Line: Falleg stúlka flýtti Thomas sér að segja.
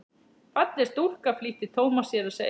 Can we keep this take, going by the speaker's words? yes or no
yes